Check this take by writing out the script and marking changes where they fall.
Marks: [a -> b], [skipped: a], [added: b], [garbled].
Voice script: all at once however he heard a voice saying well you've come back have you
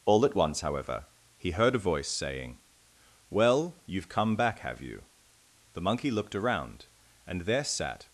all at once however he heard a voice saying well you've come back have you [added: the monkey looked around and there sat]